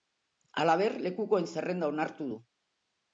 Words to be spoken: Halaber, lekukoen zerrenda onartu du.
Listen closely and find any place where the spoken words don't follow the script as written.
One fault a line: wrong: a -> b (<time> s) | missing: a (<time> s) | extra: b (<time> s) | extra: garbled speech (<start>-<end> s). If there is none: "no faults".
no faults